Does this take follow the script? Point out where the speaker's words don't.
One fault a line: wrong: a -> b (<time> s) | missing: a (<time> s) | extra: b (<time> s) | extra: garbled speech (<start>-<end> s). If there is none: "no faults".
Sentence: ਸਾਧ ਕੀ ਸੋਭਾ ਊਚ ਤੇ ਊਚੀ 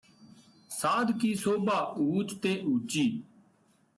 no faults